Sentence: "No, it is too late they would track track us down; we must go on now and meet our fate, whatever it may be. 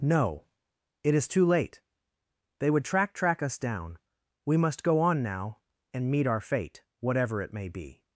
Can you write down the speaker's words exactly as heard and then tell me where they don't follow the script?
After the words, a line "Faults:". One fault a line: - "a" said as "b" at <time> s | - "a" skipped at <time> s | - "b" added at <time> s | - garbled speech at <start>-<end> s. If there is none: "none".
"No, it is too late they would track track us down; we must go on now and meet our fate, whatever it may be.
Faults:
none